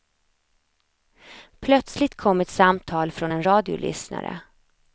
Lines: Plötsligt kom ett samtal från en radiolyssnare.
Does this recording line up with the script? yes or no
yes